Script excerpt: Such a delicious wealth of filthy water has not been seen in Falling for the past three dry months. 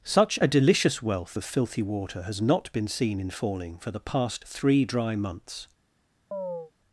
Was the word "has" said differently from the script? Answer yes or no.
no